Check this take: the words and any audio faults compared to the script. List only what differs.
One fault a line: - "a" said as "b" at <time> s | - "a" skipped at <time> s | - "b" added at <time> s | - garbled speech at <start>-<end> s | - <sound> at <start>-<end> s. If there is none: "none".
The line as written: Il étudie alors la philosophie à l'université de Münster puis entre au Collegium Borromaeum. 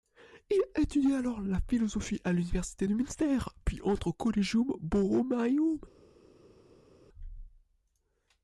none